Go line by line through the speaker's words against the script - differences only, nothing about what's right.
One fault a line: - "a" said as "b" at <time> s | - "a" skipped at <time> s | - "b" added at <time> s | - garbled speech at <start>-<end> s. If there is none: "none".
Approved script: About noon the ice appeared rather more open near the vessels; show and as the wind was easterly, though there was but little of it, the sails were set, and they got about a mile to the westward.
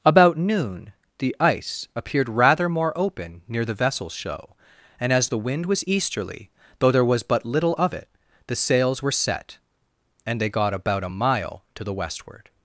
none